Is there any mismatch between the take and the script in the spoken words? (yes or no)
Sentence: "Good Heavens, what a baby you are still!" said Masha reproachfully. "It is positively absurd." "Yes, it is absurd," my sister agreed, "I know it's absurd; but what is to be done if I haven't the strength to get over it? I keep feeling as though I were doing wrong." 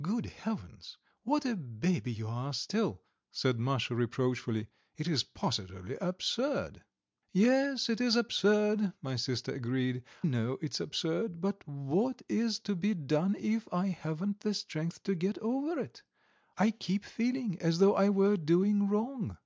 yes